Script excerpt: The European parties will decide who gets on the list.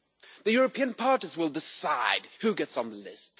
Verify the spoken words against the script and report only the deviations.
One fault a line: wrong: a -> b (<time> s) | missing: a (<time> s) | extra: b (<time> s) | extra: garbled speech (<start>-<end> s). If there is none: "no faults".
no faults